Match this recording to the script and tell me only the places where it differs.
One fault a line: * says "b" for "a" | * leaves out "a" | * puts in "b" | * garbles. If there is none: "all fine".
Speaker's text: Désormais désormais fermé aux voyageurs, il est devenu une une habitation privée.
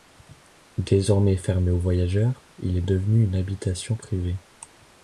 * leaves out "désormais"
* leaves out "une"